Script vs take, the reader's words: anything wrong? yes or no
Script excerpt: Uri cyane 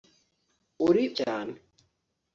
no